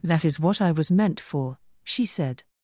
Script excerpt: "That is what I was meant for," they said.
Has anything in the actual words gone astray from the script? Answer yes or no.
yes